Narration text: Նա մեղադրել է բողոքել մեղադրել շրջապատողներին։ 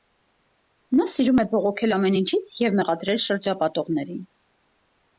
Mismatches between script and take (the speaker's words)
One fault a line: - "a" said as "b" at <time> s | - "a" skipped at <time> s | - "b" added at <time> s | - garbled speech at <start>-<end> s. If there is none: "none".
- "մեղադրել" said as "սիրում" at 1.1 s
- "ամեն ինչից և" added at 1.9 s